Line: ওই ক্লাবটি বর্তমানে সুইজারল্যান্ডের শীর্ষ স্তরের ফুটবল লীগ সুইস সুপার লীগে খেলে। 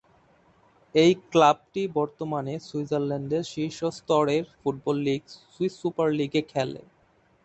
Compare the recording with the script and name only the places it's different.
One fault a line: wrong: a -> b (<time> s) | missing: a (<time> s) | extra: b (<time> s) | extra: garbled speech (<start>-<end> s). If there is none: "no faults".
wrong: ওই -> এই (0.9 s)